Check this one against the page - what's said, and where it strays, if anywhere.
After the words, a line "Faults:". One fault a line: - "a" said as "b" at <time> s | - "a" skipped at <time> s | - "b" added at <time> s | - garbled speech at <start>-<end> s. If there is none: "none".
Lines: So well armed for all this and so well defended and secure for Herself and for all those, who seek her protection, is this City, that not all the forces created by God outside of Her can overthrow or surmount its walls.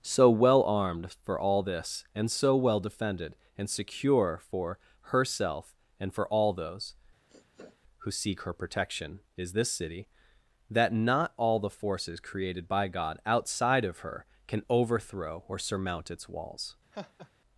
So well armed for all this and so well defended and secure for Herself and for all those, who seek her protection, is this City, that not all the forces created by God outside of Her can overthrow or surmount its walls.
Faults:
none